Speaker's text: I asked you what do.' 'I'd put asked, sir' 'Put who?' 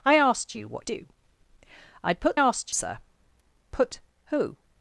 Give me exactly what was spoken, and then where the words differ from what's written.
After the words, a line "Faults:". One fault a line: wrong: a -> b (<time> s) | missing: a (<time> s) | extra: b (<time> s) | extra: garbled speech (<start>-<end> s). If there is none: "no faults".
I asked you what do.' 'I'd put asked, sir' 'Put who?'
Faults:
no faults